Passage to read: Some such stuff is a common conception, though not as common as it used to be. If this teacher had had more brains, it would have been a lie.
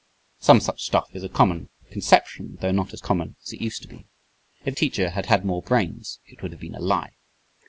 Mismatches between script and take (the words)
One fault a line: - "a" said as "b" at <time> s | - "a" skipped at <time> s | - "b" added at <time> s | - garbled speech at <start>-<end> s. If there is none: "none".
- "this" skipped at 4.8 s